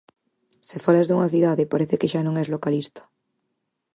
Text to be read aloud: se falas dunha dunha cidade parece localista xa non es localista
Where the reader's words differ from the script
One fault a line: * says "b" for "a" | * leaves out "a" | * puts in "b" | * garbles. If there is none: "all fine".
* leaves out "dunha"
* says "que" for "localista"